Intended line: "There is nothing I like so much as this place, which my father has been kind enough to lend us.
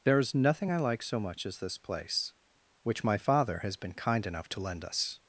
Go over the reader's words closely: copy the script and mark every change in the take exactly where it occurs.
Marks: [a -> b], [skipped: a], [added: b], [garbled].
"There is nothing I like so much as this place, which my father has been kind enough to lend us.